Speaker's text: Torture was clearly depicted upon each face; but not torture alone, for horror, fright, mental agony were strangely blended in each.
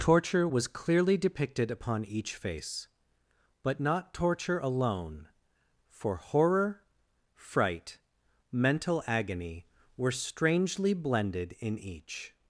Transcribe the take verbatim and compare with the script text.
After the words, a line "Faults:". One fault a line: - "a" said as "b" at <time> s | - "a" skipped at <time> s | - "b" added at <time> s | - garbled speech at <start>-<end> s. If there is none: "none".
Torture was clearly depicted upon each face; but not torture alone, for horror, fright, mental agony were strangely blended in each.
Faults:
none